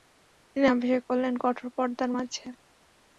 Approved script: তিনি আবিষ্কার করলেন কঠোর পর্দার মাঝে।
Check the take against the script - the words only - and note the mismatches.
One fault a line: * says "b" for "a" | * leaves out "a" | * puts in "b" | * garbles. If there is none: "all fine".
all fine